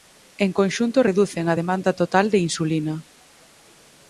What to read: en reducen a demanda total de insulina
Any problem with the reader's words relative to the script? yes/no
yes